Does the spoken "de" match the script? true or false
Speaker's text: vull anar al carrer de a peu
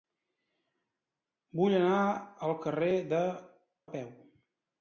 true